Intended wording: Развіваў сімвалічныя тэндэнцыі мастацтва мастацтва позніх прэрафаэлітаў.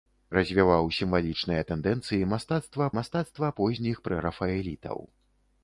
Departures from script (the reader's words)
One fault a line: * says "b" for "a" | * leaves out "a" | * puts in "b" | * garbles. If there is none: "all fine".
all fine